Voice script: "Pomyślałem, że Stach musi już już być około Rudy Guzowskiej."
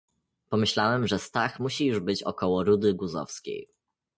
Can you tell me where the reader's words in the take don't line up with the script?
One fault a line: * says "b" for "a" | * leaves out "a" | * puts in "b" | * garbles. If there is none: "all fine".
* leaves out "już"